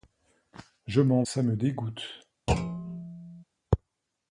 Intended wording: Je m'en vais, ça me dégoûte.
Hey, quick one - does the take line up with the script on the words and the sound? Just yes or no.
no